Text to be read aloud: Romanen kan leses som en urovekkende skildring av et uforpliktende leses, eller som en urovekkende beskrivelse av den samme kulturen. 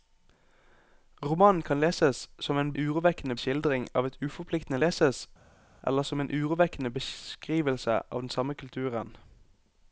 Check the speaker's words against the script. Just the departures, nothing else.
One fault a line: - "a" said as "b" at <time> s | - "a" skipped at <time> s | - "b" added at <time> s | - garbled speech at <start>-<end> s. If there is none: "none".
none